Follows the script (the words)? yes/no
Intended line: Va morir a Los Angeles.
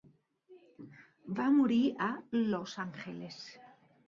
yes